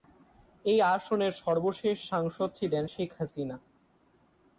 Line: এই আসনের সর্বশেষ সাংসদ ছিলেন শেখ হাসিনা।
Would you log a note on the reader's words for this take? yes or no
no